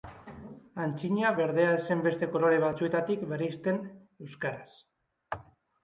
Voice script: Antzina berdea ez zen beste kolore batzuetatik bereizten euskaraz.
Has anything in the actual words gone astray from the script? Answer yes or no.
no